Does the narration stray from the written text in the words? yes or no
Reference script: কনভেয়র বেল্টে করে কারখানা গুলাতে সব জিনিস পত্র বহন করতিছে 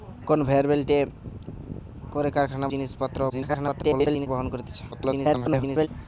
yes